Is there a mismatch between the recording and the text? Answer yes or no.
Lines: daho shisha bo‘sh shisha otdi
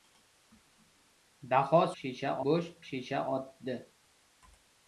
no